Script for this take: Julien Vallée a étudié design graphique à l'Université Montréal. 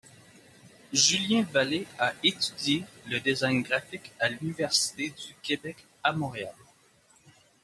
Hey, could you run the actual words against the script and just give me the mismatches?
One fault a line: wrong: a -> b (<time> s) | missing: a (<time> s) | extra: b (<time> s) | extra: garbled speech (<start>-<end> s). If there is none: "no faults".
extra: le (3.1 s)
extra: du Québec à (5.1 s)